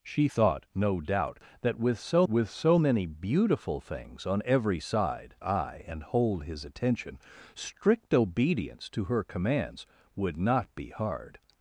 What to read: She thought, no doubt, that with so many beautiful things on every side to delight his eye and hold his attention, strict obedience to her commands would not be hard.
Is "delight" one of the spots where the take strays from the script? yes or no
yes